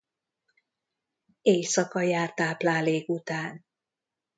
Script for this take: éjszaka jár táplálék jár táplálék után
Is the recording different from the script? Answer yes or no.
yes